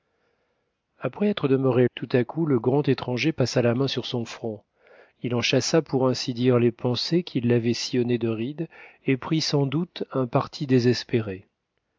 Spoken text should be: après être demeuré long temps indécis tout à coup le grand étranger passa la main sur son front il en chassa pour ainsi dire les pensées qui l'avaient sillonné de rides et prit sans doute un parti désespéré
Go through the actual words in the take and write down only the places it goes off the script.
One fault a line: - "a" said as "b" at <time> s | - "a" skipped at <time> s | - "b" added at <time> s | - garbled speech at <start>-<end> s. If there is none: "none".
- "long temps indécis" skipped at 1.9 s